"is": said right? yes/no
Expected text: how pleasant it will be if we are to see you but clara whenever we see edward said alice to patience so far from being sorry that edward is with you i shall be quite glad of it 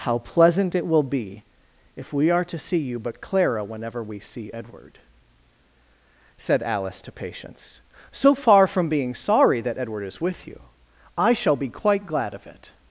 yes